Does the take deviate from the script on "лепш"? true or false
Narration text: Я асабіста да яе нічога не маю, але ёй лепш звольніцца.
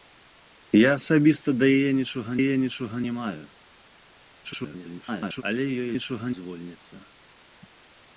true